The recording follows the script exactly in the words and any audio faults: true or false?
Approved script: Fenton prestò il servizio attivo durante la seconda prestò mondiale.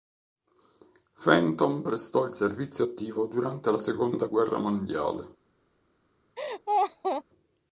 false